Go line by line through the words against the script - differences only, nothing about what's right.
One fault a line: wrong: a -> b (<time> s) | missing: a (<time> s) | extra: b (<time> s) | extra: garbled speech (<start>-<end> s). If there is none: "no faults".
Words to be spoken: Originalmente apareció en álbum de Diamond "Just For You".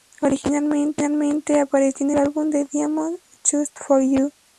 no faults